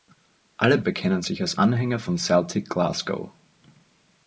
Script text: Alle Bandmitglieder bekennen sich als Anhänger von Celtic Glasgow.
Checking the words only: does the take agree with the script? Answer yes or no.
no